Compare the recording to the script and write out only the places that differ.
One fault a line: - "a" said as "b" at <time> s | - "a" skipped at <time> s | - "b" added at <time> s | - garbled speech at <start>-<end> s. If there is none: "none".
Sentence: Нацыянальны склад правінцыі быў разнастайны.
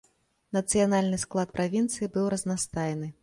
none